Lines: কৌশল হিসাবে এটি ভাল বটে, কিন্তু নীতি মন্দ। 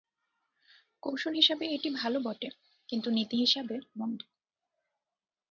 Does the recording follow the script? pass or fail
fail